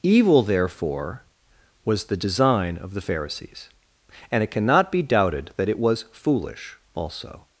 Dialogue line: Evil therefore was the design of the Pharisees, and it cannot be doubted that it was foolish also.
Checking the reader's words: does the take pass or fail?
pass